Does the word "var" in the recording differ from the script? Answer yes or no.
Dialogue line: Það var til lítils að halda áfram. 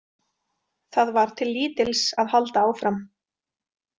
no